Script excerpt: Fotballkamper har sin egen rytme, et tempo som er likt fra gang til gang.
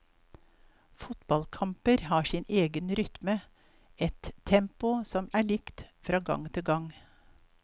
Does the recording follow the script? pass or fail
pass